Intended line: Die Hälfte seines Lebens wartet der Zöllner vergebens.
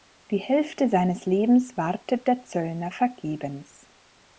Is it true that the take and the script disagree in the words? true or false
false